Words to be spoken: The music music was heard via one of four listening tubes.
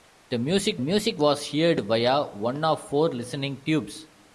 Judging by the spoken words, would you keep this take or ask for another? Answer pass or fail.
pass